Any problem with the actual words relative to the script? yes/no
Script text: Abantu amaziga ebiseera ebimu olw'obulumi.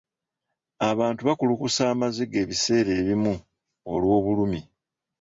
yes